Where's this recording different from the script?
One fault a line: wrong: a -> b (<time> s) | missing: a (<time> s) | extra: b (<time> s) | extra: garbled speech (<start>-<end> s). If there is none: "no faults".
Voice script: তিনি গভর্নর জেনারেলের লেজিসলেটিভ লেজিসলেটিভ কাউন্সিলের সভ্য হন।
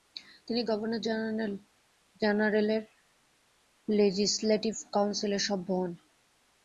missing: লেজিসলেটিভ (4.7 s)